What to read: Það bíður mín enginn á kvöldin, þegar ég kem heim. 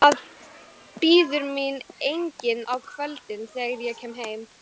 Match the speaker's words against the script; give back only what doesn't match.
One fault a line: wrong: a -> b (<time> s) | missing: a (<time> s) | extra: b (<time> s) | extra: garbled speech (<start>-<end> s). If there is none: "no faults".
no faults